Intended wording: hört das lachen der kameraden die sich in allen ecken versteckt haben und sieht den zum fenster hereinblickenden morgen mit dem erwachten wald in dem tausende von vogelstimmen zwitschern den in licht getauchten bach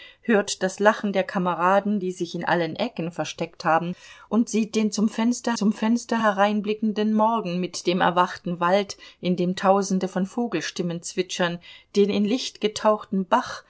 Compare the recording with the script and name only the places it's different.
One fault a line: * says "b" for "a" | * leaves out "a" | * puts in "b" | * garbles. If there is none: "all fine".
* puts in "zum fenster"